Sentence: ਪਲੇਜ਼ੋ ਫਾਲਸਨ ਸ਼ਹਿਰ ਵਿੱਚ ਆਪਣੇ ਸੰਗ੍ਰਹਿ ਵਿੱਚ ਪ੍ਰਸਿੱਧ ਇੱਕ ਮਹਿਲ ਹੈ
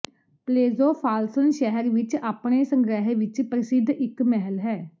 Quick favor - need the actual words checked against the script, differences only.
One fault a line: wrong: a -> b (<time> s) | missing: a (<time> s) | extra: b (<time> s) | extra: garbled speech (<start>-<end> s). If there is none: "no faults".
no faults